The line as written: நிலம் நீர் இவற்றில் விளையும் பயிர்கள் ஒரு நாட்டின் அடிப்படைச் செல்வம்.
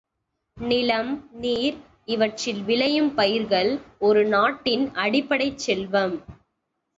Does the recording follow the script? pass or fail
pass